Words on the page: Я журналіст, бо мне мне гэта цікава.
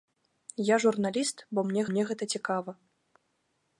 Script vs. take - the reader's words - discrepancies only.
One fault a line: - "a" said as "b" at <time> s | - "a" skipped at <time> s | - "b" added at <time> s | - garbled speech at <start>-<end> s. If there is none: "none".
none